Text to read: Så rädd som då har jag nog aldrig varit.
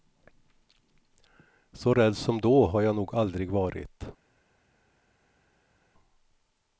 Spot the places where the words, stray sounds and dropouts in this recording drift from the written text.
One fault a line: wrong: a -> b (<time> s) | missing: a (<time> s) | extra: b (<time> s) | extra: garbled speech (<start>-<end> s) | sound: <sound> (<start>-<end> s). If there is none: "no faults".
no faults